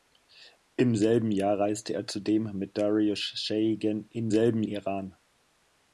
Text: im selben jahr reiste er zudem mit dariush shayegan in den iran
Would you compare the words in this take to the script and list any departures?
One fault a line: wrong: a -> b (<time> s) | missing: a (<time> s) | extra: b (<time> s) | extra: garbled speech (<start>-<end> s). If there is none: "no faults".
wrong: den -> selben (4.3 s)